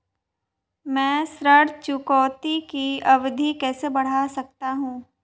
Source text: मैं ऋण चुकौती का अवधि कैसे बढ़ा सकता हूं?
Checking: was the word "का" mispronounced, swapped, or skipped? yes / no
yes